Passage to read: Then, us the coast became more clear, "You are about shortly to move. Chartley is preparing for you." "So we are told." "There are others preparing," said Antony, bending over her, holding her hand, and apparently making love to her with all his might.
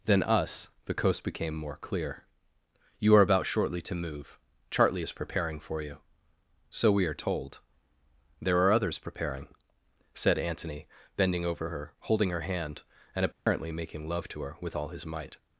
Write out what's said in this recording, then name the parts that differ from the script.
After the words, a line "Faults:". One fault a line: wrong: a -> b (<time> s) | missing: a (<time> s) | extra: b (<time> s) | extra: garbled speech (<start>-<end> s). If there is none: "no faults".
Then, us the coast became more clear, "You are about shortly to move. Chartley is preparing for you." "So we are told." "There are others preparing," said Antony, bending over her, holding her hand, and apparently making love to her with all his might.
Faults:
no faults